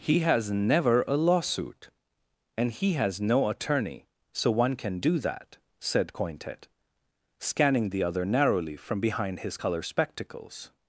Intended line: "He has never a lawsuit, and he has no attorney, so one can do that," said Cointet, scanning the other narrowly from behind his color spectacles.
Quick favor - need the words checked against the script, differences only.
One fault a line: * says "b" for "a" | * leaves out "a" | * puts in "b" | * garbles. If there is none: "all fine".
all fine